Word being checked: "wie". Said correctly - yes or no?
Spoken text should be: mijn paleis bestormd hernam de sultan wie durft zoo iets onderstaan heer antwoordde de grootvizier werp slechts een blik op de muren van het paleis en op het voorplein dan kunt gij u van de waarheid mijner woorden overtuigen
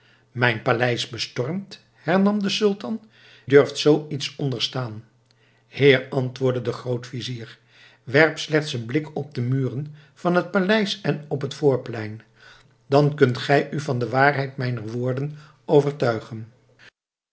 no